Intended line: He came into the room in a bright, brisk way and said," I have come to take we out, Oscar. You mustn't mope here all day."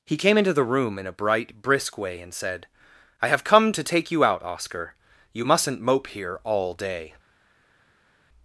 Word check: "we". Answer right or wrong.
wrong